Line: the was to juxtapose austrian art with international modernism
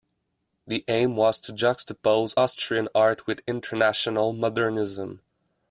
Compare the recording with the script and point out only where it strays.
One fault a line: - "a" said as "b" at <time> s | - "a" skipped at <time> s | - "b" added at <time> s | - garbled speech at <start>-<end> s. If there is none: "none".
- "aim" added at 0.9 s